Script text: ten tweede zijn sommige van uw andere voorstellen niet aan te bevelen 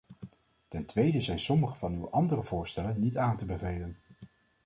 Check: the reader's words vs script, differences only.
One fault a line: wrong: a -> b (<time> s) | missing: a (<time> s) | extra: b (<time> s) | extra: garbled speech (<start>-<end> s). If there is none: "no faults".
no faults